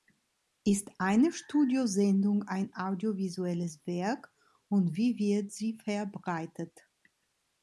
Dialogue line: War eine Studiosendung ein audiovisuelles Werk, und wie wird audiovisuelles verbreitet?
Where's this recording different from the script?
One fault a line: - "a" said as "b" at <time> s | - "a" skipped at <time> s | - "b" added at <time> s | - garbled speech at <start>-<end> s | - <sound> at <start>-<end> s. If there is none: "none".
- "War" said as "Ist" at 0.7 s
- "audiovisuelles" said as "sie" at 5.5 s